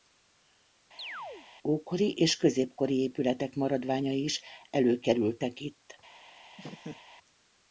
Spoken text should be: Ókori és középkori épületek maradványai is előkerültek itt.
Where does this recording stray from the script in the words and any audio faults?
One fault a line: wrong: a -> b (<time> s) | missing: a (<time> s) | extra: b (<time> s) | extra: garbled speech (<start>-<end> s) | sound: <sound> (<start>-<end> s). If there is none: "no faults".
sound: chirp (1.0-1.5 s)
sound: laugh (6.6-7.0 s)